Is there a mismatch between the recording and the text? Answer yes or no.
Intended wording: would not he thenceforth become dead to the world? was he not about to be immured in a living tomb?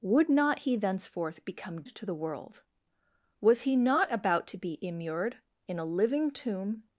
yes